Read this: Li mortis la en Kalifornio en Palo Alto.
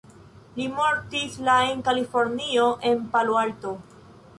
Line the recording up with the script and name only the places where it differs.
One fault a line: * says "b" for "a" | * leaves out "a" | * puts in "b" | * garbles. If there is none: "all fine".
all fine